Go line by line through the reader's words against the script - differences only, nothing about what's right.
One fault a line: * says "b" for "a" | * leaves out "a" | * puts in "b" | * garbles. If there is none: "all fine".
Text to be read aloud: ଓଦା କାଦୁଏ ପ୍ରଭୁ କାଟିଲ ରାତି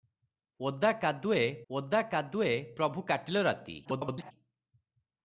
* puts in "ଓଦା କାଦୁଏ"
* garbles